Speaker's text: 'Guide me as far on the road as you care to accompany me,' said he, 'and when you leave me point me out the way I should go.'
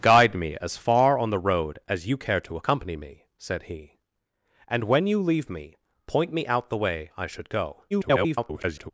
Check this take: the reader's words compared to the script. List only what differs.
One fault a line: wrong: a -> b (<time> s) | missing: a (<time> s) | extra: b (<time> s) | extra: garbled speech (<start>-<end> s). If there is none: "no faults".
extra: garbled speech (7.9-8.9 s)